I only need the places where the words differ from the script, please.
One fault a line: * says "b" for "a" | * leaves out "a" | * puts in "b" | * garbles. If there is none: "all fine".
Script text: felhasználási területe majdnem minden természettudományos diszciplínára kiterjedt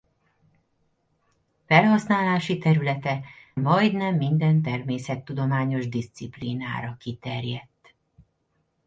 all fine